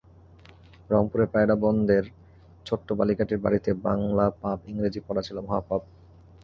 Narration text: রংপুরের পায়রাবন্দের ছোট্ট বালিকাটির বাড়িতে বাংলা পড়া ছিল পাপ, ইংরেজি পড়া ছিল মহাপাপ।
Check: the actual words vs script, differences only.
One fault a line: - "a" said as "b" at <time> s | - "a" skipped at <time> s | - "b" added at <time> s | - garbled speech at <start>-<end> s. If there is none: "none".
- "পড়া ছিল" skipped at 4.2 s